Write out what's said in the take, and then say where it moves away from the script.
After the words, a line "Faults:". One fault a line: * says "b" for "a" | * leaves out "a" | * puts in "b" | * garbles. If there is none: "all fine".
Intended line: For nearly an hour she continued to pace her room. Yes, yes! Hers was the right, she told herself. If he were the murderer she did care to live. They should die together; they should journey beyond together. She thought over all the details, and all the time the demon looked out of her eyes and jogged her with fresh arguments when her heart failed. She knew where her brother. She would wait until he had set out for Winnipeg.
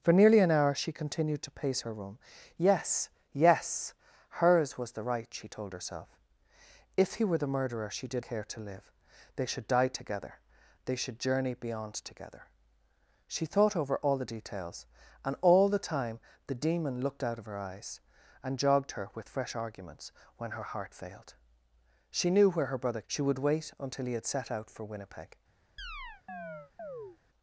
For nearly an hour she continued to pace her room. Yes, yes! Hers was the right, she told herself. If he were the murderer she did care to live. They should die together; they should journey beyond together. She thought over all the details, and all the time the demon looked out of her eyes and jogged her with fresh arguments when her heart failed. She knew where her brother. She would wait until he had set out for Winnipeg.
Faults:
all fine